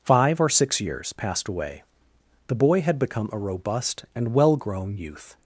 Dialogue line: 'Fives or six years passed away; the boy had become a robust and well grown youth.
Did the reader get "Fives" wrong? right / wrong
wrong